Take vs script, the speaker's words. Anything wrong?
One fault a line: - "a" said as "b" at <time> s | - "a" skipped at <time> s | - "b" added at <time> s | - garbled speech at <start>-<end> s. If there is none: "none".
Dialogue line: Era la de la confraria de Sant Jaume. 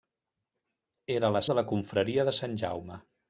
none